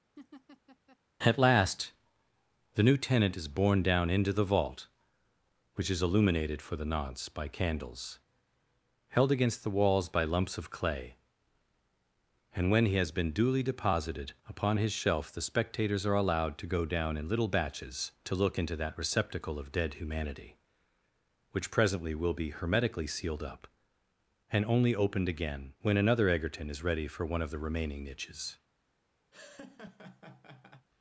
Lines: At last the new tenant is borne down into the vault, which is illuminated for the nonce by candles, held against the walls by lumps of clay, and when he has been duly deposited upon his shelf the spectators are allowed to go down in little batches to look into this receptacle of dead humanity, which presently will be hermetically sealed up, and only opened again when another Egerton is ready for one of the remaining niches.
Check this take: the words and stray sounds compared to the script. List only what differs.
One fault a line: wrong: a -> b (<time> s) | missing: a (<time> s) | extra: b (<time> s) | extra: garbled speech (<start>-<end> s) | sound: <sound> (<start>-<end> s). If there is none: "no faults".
sound: laugh (0.2-1.0 s)
wrong: this -> that (18.8 s)
sound: laugh (29.3-30.9 s)